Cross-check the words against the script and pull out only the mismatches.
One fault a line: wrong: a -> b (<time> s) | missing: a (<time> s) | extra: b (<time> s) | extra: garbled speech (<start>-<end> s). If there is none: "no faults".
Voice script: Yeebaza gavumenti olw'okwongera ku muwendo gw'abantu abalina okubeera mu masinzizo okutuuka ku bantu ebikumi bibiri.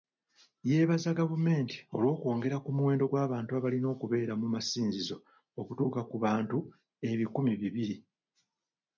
no faults